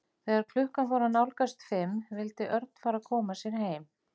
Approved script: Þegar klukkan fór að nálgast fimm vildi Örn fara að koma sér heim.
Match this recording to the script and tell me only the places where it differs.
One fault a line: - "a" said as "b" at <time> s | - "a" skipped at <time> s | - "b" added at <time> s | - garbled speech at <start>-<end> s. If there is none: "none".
none